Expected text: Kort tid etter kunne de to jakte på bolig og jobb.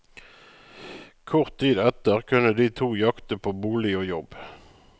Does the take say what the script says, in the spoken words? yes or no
yes